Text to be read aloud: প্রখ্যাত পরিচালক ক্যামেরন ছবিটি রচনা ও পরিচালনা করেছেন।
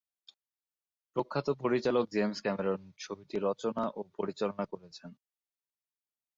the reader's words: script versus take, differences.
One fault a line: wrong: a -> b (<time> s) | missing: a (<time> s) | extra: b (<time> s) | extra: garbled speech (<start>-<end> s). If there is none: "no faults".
extra: জেমস (2.1 s)